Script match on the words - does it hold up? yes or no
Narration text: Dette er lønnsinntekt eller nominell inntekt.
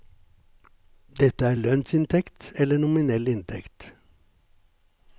yes